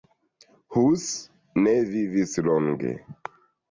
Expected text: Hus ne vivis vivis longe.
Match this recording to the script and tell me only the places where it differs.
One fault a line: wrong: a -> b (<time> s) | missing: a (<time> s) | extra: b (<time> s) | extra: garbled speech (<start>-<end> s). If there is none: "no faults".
missing: vivis (2.4 s)